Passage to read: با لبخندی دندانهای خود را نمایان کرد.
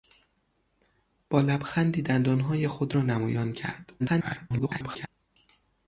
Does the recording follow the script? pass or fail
fail